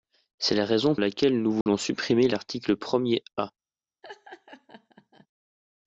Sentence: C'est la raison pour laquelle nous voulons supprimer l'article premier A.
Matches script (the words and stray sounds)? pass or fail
fail